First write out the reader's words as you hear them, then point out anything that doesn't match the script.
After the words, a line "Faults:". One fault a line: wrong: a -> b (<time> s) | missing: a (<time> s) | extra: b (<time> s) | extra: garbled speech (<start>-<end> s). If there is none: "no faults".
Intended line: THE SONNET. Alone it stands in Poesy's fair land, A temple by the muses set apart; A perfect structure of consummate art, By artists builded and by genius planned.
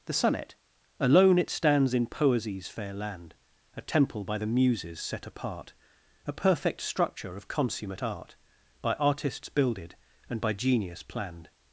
THE SONNET. Alone it stands in Poesy's fair land, A temple by the muses set apart; A perfect structure of consummate art, By artists builded and by genius planned.
Faults:
no faults